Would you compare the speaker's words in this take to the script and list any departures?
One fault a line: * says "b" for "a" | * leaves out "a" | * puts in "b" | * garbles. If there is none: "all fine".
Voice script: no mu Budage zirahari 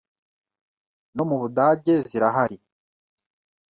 all fine